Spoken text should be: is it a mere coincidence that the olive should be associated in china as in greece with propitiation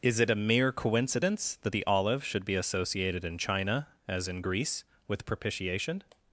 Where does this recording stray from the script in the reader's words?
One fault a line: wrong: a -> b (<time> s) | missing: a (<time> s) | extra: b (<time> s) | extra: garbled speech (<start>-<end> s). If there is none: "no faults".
no faults